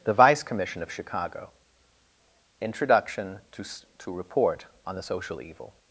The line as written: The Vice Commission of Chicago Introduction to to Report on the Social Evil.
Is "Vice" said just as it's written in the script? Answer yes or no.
yes